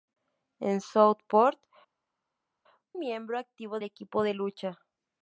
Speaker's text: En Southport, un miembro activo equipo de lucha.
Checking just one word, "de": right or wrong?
right